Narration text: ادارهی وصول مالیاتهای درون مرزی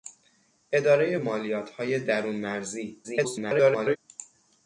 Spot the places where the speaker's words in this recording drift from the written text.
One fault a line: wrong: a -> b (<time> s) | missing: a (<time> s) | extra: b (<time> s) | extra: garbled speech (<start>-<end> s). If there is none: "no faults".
missing: وصول (1.1 s)
extra: garbled speech (3.0-4.0 s)